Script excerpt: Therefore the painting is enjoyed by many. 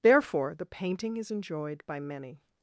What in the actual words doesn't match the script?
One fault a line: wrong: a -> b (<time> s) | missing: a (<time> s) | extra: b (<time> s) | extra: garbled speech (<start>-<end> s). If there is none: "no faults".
no faults